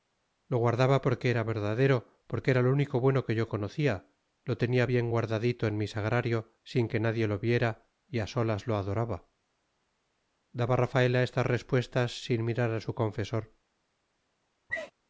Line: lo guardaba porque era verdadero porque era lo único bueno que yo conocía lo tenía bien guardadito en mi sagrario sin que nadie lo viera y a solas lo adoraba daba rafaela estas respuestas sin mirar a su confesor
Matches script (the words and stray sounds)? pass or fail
fail